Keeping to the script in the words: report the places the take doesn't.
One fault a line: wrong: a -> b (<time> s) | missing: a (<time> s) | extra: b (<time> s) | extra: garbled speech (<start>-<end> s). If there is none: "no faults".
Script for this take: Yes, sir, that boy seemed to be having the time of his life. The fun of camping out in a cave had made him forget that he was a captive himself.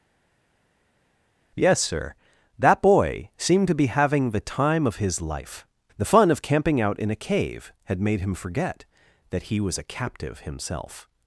no faults